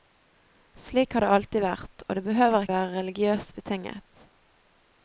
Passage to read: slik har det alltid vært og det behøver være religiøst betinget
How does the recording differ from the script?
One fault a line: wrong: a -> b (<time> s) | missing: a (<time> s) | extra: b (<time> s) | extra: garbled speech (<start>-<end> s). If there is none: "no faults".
no faults